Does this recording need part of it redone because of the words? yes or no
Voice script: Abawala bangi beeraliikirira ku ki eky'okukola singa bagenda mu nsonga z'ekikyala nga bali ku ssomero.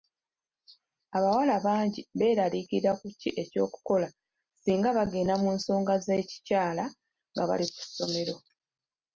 no